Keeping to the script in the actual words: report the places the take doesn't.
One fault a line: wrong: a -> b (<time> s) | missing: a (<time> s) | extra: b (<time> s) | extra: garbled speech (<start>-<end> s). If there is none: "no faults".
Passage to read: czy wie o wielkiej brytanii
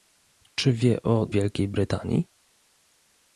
no faults